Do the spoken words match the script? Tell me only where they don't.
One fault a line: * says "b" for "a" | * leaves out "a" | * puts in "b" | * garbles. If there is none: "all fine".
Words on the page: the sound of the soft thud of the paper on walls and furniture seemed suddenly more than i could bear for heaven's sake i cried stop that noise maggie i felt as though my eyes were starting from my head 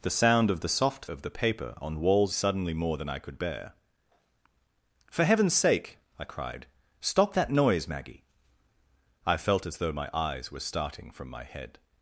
* leaves out "thud"
* leaves out "and furniture seemed"